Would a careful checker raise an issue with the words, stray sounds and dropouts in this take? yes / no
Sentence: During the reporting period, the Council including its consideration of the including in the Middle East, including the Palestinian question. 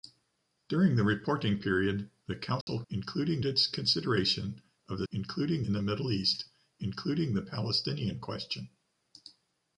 yes